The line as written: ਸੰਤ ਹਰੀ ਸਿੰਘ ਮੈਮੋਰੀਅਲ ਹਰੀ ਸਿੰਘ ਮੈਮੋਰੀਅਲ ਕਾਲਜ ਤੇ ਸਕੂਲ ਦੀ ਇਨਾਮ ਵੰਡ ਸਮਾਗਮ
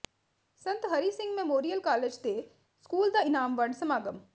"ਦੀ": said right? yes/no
no